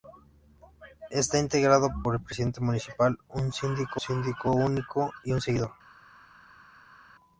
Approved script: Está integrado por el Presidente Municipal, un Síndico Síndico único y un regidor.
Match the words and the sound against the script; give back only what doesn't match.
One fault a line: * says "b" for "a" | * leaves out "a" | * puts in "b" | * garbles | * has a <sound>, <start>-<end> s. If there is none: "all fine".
all fine